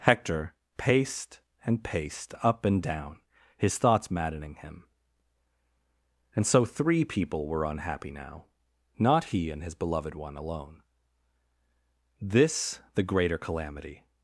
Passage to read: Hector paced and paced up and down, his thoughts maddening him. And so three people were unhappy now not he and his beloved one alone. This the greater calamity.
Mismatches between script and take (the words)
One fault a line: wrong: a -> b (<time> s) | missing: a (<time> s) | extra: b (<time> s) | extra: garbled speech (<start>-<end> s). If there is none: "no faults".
no faults